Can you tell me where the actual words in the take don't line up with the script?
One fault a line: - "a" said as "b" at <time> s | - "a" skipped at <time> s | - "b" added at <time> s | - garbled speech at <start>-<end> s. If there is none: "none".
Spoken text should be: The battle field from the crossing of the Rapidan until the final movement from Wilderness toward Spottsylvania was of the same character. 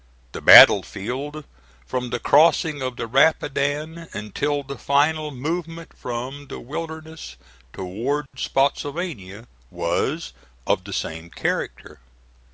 - "the" added at 6.5 s